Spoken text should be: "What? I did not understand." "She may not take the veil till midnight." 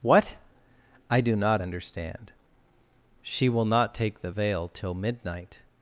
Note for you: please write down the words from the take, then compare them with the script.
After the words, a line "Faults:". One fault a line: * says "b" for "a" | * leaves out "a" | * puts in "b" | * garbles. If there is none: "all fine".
"What? I do not understand." "She will not take the veil till midnight."
Faults:
* says "do" for "did"
* says "will" for "may"